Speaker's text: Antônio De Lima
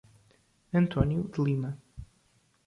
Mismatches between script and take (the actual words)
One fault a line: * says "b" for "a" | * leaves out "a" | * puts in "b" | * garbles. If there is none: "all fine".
all fine